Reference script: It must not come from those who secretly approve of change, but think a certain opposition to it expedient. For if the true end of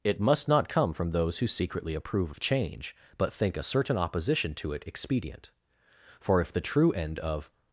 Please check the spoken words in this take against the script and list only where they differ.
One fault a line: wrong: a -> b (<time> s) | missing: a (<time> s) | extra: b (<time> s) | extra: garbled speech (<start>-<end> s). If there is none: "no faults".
no faults